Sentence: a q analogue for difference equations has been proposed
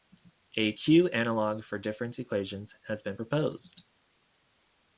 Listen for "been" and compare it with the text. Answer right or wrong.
right